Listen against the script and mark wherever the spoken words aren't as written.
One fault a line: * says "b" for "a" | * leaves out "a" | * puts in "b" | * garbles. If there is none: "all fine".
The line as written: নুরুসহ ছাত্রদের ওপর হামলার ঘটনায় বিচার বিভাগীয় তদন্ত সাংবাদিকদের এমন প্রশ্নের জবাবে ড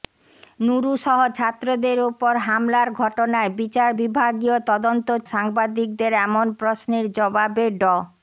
all fine